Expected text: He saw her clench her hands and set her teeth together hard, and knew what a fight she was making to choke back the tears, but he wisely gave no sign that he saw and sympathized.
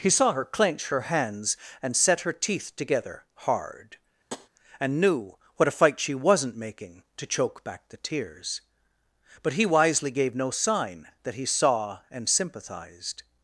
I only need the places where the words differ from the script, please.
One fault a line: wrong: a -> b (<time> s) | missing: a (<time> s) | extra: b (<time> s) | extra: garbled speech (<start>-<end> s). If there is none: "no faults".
wrong: was -> wasn't (6.1 s)